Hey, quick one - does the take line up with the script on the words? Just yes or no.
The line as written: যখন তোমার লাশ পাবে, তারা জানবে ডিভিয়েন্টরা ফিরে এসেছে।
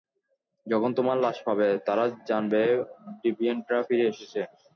yes